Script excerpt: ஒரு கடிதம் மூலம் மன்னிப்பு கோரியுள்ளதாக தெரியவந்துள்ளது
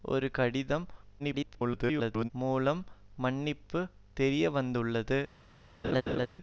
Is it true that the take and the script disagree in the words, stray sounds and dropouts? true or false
true